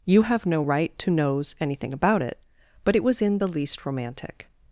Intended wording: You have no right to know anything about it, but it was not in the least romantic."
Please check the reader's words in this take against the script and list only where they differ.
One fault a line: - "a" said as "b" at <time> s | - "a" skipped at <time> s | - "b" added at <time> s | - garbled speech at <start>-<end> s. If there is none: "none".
- "know" said as "knows" at 1.1 s
- "not" skipped at 3.2 s